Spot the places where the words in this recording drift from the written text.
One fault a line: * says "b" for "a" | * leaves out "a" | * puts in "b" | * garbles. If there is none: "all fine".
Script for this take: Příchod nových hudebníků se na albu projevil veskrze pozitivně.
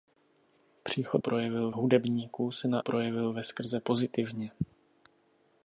* says "projevil" for "nových"
* leaves out "albu"